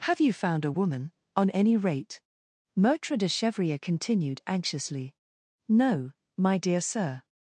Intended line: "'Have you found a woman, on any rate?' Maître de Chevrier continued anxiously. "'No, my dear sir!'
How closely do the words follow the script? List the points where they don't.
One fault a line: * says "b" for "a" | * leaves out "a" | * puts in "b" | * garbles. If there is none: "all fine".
all fine